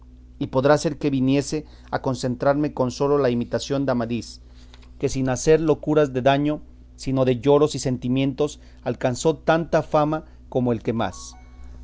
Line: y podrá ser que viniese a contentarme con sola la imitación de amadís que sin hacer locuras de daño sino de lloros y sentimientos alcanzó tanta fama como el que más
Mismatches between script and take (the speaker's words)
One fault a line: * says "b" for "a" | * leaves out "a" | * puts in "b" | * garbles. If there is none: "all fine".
all fine